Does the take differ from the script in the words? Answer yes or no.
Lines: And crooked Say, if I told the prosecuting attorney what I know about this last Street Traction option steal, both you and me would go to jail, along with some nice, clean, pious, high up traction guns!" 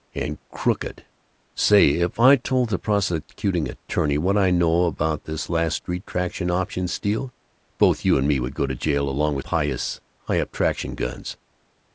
yes